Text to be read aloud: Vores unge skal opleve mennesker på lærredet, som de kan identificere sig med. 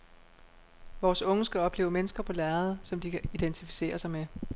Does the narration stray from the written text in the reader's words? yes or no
no